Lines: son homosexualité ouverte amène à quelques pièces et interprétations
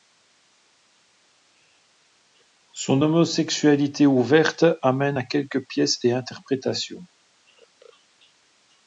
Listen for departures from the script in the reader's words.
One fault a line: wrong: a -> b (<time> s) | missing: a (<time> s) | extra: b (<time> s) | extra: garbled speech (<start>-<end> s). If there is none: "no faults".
no faults